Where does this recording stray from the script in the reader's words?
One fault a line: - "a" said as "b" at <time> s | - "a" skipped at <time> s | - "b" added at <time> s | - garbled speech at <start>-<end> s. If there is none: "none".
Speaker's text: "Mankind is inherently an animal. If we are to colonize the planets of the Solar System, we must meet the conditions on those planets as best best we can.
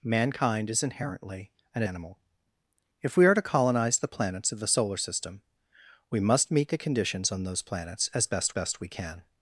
none